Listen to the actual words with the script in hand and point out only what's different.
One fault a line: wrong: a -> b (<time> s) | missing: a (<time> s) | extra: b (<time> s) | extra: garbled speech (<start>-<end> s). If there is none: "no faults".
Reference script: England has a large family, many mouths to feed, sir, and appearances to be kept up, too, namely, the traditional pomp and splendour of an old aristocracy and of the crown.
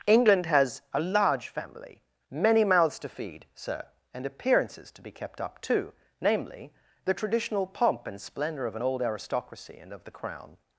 no faults